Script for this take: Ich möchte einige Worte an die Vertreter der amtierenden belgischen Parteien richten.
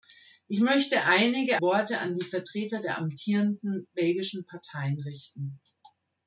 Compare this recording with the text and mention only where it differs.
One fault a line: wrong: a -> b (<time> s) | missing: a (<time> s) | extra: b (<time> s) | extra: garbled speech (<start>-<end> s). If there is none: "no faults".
no faults